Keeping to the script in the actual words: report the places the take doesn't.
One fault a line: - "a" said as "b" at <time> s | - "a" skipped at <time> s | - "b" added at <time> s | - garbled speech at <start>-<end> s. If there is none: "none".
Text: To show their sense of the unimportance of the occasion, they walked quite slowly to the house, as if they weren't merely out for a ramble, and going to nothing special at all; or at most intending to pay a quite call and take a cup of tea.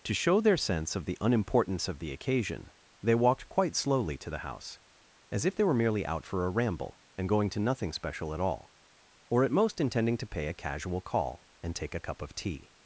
- "weren't" said as "were" at 5.6 s
- "quite" said as "casual" at 10.6 s